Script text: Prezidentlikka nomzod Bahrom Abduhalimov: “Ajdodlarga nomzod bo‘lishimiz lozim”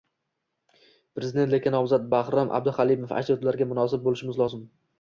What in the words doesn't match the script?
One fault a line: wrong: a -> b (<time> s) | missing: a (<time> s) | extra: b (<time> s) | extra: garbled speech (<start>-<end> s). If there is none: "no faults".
wrong: nomzod -> munosib (3.7 s)